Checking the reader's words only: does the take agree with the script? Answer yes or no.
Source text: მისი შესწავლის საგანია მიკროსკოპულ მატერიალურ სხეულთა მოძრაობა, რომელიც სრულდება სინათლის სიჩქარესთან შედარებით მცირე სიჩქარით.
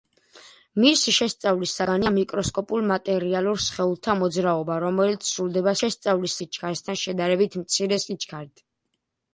no